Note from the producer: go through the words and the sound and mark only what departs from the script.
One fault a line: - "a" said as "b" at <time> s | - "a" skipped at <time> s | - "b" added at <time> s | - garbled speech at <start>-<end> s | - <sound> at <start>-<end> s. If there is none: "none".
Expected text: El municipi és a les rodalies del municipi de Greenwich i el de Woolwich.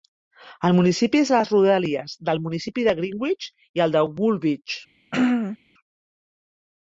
- throat clearing at 5.1-5.6 s